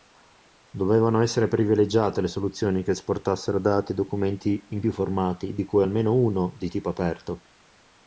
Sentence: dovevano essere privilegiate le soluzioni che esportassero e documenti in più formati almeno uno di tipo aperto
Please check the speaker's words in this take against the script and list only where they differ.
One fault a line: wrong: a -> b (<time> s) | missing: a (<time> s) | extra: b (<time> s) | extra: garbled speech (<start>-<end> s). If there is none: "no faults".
extra: dati (3.6 s)
extra: di cui (5.5 s)